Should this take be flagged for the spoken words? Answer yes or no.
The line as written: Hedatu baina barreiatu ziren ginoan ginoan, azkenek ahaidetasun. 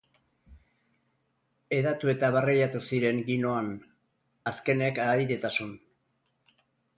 yes